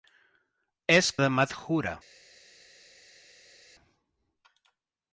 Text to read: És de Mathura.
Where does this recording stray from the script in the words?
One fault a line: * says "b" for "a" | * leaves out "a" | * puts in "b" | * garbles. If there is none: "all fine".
all fine